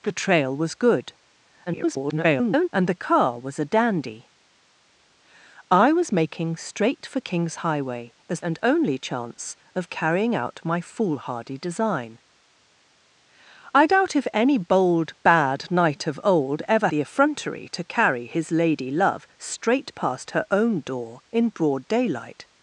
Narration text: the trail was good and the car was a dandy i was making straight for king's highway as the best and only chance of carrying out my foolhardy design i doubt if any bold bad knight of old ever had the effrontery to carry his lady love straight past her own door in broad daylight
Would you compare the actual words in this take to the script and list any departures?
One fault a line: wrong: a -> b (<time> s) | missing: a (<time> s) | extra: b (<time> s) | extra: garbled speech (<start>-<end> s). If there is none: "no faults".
extra: garbled speech (1.7-2.7 s)
missing: the best (8.4 s)
missing: had (16.9 s)